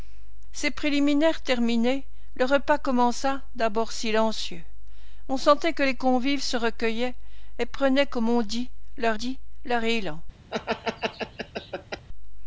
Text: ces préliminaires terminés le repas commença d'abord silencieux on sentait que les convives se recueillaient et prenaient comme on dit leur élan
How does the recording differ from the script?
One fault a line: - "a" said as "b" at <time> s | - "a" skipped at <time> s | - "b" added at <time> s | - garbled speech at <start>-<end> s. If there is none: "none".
- "dit leur" added at 9.1 s